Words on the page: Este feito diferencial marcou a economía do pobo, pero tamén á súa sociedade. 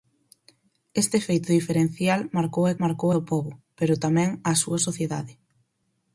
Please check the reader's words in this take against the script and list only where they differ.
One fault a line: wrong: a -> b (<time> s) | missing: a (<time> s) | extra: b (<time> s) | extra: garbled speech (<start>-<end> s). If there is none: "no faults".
wrong: economía -> marcou (2.8 s)